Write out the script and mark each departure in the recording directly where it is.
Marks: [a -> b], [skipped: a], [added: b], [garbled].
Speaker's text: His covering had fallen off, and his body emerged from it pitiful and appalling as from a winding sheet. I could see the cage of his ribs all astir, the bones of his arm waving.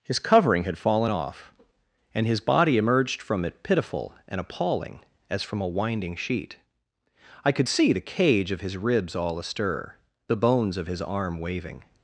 His covering had fallen off, and his body emerged from it pitiful and appalling as from a winding sheet. I could see the cage of his ribs all astir, the bones of his arm waving.